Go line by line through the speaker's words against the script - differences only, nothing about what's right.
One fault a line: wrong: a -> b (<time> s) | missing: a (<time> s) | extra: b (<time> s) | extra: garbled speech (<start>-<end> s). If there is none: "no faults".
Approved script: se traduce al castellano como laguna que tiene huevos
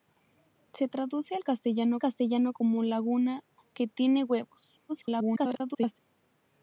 extra: castellano (2.0 s)
extra: garbled speech (4.9-6.0 s)